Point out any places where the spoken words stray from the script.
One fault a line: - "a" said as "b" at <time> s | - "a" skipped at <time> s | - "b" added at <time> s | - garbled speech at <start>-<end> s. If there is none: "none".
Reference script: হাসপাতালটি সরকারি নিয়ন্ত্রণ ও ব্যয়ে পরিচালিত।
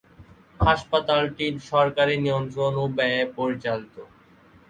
none